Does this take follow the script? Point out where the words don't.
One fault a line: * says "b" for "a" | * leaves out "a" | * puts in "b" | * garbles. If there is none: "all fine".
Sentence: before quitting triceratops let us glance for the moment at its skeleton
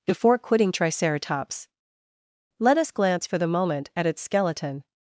all fine